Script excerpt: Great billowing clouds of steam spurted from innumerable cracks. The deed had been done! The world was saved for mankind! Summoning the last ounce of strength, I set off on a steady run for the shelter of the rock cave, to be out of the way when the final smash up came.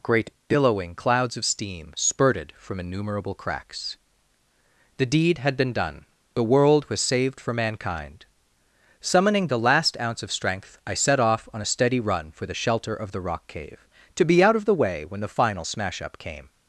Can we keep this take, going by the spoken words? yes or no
yes